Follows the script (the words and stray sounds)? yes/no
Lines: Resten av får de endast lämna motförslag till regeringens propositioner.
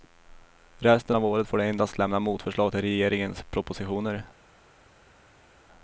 no